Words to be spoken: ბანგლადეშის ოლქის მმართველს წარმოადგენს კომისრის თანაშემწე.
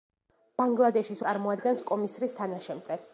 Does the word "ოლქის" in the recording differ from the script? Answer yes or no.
yes